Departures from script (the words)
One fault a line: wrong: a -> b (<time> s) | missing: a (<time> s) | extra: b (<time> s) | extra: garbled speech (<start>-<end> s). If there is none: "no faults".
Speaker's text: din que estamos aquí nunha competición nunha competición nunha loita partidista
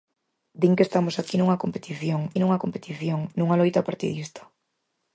no faults